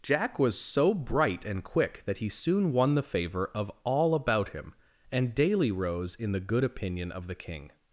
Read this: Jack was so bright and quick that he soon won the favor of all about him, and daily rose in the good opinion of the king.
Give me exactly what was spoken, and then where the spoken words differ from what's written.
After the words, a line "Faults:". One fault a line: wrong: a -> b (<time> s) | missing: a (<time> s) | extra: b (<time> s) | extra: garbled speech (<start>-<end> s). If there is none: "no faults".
Jack was so bright and quick that he soon won the favor of all about him, and daily rose in the good opinion of the king.
Faults:
no faults